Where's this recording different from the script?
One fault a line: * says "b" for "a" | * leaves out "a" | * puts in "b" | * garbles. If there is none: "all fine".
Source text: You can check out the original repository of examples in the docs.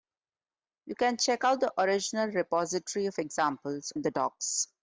all fine